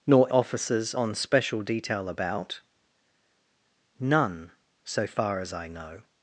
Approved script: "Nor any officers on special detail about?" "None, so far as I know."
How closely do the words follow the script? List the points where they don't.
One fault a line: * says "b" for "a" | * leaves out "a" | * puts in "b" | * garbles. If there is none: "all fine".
* leaves out "any"